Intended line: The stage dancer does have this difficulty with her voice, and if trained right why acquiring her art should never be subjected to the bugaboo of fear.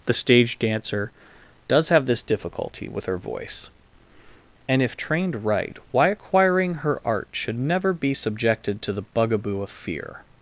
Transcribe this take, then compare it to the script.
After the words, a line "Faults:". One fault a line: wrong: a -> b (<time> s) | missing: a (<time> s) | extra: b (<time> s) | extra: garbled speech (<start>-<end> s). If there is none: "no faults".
The stage dancer does have this difficulty with her voice, and if trained right why acquiring her art should never be subjected to the bugaboo of fear.
Faults:
no faults